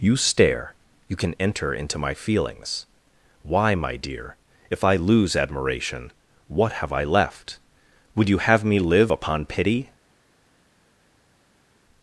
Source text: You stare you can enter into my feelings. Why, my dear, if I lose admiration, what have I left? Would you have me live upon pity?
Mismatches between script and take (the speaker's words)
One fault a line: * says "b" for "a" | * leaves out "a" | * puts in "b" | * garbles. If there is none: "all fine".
all fine